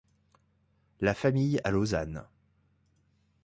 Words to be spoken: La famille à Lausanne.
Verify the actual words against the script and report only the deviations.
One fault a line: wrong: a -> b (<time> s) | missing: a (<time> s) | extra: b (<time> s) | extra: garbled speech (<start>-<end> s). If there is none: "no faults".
no faults